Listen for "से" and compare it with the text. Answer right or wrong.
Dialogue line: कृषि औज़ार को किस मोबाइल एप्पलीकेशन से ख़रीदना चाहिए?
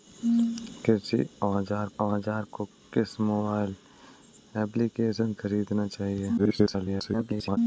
wrong